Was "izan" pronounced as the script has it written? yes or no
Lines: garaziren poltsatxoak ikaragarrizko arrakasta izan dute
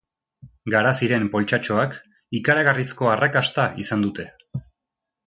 yes